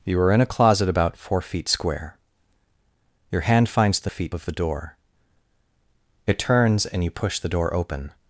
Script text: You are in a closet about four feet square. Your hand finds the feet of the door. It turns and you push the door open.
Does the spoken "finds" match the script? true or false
true